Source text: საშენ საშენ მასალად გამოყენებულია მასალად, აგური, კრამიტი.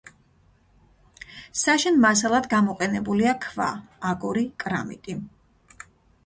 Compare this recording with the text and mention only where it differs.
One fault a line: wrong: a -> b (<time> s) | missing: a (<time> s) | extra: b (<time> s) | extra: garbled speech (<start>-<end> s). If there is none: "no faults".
missing: საშენ (2.0 s)
wrong: მასალად -> ქვა (3.5 s)